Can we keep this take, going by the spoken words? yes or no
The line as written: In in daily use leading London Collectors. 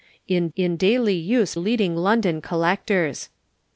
yes